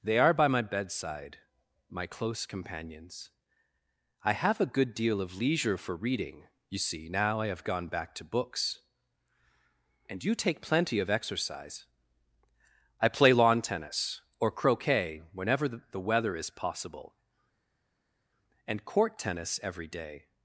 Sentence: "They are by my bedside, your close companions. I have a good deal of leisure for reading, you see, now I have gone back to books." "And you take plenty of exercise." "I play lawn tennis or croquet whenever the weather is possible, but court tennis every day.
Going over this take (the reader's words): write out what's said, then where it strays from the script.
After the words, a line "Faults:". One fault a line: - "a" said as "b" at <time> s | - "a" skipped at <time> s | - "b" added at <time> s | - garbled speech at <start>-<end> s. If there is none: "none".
"They are by my bedside, my close companions. I have a good deal of leisure for reading, you see, now I have gone back to books." "And you take plenty of exercise." "I play lawn tennis or croquet whenever the weather is possible, and court tennis every day.
Faults:
- "your" said as "my" at 1.9 s
- "but" said as "and" at 18.7 s